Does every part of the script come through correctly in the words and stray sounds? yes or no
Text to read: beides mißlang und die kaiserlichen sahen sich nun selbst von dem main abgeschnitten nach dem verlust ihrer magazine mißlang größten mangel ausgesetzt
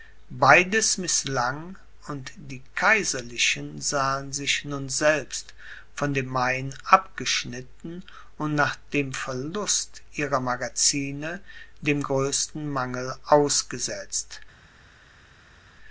no